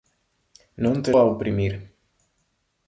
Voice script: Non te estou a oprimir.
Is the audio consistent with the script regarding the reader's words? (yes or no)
no